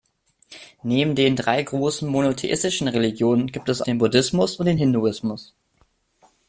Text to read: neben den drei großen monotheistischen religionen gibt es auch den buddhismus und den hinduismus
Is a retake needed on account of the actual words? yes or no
yes